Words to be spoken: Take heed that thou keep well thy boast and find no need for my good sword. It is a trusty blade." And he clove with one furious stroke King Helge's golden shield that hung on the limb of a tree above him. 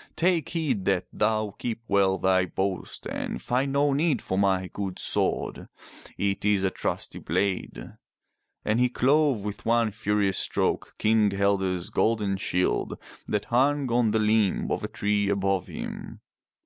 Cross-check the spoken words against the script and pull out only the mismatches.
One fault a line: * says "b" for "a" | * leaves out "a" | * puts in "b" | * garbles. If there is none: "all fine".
all fine